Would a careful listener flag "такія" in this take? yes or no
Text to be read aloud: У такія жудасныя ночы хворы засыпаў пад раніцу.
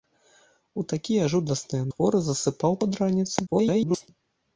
no